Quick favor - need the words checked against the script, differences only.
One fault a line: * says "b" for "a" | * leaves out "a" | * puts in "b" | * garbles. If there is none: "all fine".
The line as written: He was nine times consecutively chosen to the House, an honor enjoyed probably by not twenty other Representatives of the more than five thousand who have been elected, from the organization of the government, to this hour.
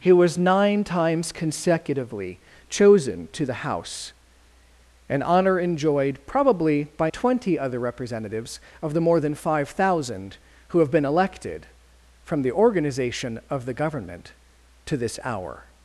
* leaves out "not"